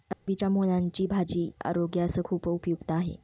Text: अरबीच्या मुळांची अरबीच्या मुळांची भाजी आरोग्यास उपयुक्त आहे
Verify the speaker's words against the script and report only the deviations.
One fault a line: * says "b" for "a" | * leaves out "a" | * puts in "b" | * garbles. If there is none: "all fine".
* leaves out "अरबीच्या मुळांची"
* puts in "खूप"